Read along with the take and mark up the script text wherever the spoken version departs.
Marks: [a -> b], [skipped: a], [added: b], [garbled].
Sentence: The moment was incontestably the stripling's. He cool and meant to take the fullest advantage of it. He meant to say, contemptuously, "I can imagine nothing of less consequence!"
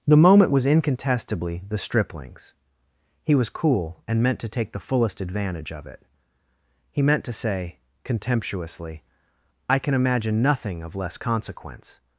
The moment was incontestably the stripling's. He [added: was] cool and meant to take the fullest advantage of it. He meant to say, contemptuously, "I can imagine nothing of less consequence!"